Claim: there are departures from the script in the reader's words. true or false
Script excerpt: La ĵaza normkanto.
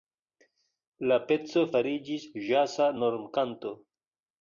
true